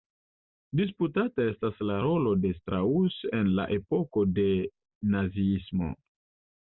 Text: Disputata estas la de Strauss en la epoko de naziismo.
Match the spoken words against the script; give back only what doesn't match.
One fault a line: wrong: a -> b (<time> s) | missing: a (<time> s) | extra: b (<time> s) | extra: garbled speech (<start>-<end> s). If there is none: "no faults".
extra: rolo (2.0 s)